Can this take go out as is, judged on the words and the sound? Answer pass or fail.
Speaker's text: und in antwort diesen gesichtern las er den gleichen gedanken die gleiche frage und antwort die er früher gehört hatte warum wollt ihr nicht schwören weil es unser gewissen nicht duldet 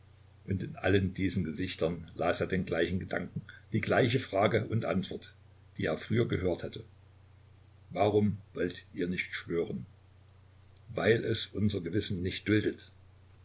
fail